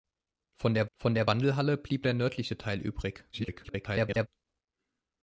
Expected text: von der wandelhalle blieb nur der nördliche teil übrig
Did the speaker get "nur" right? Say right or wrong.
wrong